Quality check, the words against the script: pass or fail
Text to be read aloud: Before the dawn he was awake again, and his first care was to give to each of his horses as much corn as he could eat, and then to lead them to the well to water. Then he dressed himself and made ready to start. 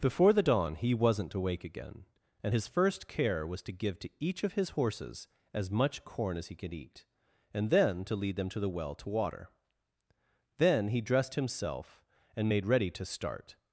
fail